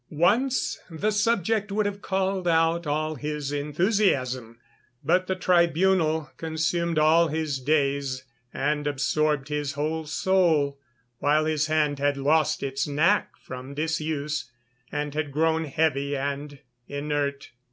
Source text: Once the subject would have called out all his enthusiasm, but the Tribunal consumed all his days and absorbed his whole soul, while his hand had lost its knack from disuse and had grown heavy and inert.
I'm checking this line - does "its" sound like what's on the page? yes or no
yes